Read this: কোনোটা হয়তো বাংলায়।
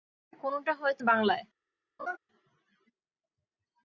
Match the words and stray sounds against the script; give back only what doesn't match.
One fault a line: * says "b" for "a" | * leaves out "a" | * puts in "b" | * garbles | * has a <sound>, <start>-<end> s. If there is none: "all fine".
* has a laugh, 2.0-2.2 s